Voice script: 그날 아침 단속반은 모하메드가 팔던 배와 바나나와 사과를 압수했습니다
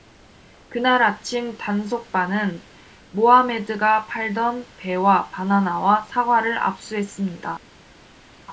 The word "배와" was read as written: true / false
true